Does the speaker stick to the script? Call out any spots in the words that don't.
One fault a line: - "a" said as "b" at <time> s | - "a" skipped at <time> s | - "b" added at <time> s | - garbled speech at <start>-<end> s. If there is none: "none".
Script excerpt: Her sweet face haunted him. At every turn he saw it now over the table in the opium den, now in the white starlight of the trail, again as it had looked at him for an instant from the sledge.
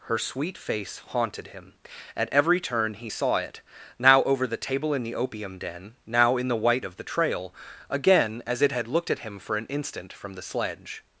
- "starlight" skipped at 6.9 s